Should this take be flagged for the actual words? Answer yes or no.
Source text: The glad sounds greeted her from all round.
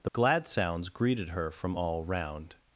no